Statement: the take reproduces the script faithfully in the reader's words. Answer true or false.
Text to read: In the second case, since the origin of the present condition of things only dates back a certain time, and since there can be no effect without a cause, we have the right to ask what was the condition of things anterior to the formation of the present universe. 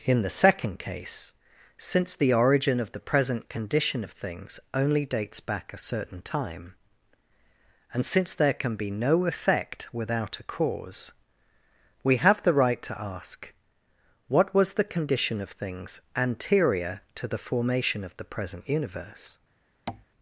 true